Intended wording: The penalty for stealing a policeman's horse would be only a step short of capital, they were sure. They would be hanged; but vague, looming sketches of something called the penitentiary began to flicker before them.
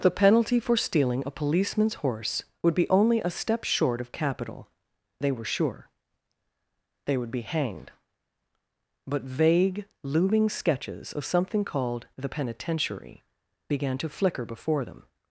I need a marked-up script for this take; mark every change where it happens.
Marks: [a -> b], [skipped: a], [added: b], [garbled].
The penalty for stealing a policeman's horse would be only a step short of capital, they were sure. They would be hanged; but vague, looming sketches of something called the penitentiary began to flicker before them.